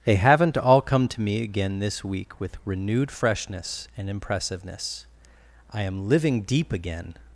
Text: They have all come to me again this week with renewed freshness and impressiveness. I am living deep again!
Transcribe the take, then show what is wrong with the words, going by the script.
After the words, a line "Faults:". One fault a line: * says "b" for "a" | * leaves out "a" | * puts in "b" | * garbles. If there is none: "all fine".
They haven't all come to me again this week with renewed freshness and impressiveness. I am living deep again!
Faults:
* says "haven't" for "have"